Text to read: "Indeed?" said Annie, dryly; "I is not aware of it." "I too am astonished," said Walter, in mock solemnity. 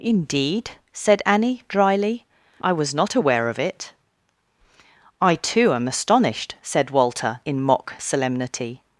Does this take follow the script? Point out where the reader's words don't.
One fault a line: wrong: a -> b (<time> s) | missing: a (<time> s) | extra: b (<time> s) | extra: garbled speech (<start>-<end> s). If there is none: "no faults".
wrong: is -> was (2.7 s)